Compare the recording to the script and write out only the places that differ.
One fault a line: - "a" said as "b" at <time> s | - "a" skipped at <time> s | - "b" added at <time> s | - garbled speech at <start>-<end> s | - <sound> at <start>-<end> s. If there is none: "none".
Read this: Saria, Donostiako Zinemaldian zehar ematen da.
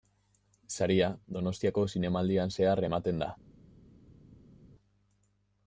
none